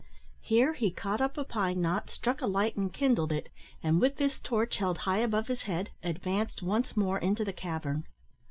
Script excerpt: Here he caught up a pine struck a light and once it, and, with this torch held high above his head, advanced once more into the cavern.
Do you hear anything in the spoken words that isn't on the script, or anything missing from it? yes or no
yes